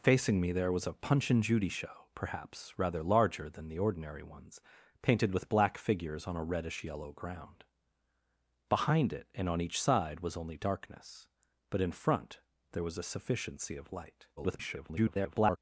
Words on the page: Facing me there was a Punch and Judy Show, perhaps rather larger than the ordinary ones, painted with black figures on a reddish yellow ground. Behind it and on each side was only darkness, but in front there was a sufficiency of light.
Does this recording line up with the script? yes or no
no